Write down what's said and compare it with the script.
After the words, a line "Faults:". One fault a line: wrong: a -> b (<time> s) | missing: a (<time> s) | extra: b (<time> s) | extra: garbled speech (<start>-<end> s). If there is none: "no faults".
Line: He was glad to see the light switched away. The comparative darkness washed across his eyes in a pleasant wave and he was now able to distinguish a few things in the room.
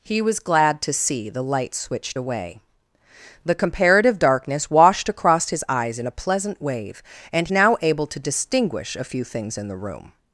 He was glad to see the light switched away. The comparative darkness washed across his eyes in a pleasant wave and now able to distinguish a few things in the room.
Faults:
missing: he was (7.5 s)